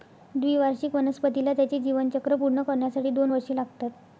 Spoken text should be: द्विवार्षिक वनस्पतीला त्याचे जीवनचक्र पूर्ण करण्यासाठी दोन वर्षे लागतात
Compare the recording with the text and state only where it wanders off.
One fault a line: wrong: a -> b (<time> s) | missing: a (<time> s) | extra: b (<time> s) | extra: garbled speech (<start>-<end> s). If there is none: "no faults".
no faults